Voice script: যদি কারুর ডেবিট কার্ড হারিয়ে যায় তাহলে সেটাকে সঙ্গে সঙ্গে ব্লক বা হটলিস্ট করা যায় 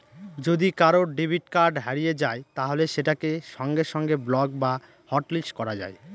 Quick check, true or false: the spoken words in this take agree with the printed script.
true